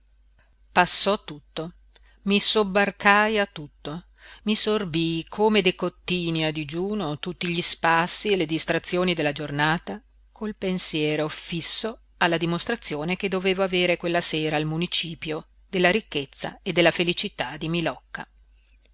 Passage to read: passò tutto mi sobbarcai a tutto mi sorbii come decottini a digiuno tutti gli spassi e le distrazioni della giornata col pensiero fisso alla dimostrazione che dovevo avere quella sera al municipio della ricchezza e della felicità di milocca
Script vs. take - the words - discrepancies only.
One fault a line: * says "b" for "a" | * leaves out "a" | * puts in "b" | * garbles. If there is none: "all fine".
all fine